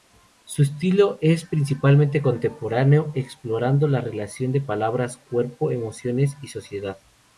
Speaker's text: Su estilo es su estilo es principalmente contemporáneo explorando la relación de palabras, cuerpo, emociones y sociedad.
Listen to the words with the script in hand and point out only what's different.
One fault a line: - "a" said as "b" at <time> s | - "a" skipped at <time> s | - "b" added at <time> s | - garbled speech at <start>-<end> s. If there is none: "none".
- "su estilo es" skipped at 1.4 s